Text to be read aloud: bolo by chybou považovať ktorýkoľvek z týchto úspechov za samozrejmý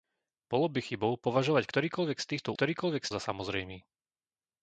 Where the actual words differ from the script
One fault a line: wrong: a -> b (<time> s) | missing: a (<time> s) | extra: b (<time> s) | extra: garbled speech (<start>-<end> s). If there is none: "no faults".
wrong: úspechov -> ktorýkoľvek (2.5 s)